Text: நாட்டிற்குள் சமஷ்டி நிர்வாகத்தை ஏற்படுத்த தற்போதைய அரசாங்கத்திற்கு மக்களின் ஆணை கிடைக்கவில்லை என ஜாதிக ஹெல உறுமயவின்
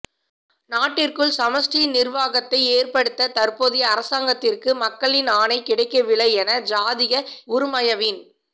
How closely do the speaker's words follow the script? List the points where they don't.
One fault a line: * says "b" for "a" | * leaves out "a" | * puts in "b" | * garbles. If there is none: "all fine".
* leaves out "ஹெல"